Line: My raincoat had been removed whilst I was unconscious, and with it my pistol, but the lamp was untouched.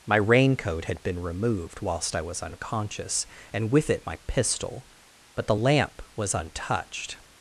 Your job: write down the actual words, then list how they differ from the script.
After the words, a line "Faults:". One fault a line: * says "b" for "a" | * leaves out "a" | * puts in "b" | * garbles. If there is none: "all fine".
My raincoat had been removed whilst I was unconscious, and with it my pistol, but the lamp was untouched.
Faults:
all fine